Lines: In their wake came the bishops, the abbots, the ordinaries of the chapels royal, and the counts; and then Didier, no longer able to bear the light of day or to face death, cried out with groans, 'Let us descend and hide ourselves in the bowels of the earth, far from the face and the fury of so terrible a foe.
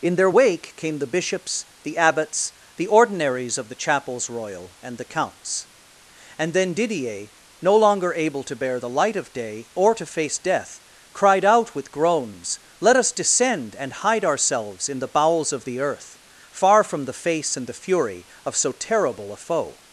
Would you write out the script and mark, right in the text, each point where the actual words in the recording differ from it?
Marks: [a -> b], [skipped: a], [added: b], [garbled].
In their wake came the bishops, the abbots, the ordinaries of the chapels royal, and the counts; and then Didier, no longer able to bear the light of day or to face death, cried out with groans, 'Let us descend and hide ourselves in the bowels of the earth, far from the face and the fury of so terrible a foe.